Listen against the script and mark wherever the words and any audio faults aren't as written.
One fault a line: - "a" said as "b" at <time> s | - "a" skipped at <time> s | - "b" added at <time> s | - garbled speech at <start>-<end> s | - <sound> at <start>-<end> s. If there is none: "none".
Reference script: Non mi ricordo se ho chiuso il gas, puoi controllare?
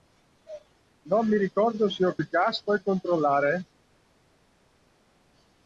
- "chiuso" skipped at 2.2 s